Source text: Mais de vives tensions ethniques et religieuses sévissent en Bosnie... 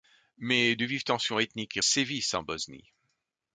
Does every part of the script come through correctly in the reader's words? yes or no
no